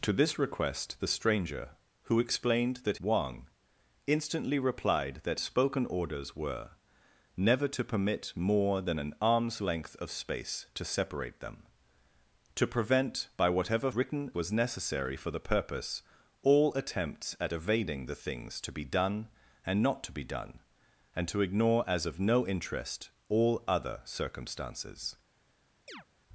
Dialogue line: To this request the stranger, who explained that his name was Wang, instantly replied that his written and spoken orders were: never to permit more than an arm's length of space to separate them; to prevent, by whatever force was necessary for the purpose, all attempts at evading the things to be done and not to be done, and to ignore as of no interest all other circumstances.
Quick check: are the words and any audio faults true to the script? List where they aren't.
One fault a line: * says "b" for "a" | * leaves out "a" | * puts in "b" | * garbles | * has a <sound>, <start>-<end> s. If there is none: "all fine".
* leaves out "his name was"
* leaves out "his written and"
* says "written" for "force"
* has a chirp, 25.9-26.1 s